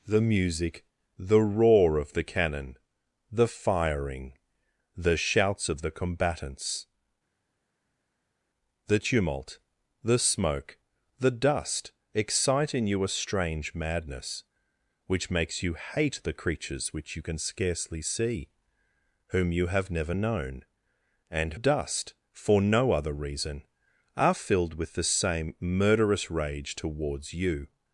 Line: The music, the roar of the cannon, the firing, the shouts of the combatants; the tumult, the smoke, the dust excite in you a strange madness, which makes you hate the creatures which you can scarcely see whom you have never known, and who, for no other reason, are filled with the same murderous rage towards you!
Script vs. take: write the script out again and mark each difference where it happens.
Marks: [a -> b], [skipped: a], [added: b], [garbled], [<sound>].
The music, the roar of the cannon, the firing, the shouts of the combatants; the tumult, the smoke, the dust excite in you a strange madness, which makes you hate the creatures which you can scarcely see whom you have never known, and [who, -> dust] for no other reason, are filled with the same murderous rage towards you!